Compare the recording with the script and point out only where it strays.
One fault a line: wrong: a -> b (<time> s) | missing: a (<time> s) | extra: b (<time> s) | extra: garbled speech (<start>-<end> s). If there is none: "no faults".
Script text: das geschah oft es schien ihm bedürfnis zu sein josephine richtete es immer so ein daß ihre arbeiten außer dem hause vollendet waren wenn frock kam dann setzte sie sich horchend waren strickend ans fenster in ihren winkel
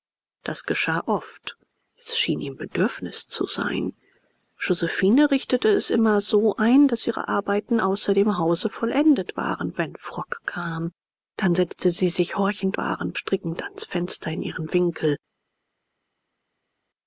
no faults